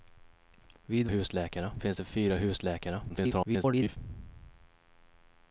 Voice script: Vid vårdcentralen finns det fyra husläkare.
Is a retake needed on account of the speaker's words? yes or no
yes